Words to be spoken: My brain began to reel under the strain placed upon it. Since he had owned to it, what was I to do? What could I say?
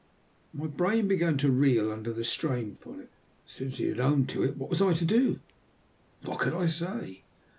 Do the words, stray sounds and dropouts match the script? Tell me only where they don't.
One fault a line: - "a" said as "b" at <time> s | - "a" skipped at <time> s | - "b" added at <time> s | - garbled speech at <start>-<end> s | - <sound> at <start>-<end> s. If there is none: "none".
- "placed" skipped at 2.7 s